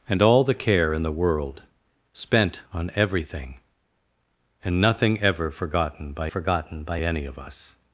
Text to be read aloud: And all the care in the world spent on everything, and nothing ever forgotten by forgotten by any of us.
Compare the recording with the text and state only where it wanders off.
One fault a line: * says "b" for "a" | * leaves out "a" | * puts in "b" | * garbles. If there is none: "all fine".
all fine